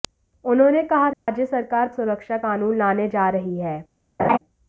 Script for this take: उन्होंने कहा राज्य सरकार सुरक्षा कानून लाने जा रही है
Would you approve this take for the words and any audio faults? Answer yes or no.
no